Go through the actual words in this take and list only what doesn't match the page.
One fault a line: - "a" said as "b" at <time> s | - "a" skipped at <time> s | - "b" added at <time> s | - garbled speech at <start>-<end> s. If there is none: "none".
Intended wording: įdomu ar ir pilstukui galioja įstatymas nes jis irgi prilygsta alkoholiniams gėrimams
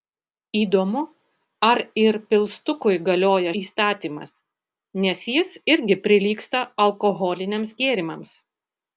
none